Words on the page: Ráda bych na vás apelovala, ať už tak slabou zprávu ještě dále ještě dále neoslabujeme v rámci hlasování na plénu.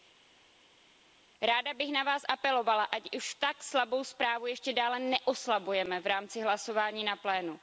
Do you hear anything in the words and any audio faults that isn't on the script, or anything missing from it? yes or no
yes